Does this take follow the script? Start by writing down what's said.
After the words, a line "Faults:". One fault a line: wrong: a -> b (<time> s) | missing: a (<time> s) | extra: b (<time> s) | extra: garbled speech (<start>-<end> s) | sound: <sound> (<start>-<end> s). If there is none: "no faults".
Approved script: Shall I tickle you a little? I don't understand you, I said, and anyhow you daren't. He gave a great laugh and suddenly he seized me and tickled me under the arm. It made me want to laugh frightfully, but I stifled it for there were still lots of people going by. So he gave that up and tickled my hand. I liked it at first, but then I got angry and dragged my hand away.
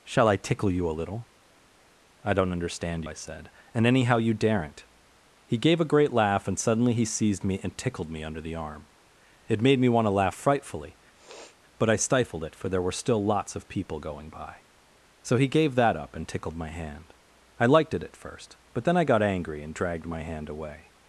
Shall I tickle you a little? I don't understand I said, and anyhow you daren't. He gave a great laugh and suddenly he seized me and tickled me under the arm. It made me want to laugh frightfully, but I stifled it for there were still lots of people going by. So he gave that up and tickled my hand. I liked it at first, but then I got angry and dragged my hand away.
Faults:
missing: you (3.0 s)
sound: sniff (11.1-11.6 s)